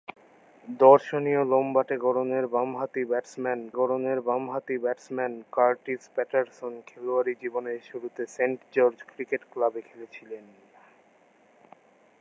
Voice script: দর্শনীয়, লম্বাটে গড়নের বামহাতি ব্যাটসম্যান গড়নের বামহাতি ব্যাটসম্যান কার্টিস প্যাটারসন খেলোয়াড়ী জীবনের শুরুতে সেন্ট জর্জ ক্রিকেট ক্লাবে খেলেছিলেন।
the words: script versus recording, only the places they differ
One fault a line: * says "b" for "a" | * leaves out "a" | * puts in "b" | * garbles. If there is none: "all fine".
all fine